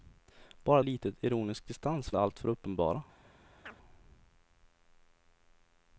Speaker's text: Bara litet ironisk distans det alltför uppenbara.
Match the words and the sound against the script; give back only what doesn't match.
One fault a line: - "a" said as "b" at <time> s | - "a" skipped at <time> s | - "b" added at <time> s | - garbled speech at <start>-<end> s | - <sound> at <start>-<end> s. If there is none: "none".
- chirp at 3.6-3.8 s